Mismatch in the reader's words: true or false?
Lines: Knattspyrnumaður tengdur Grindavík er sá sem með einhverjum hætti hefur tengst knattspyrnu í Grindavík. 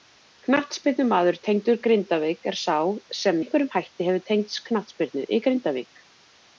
true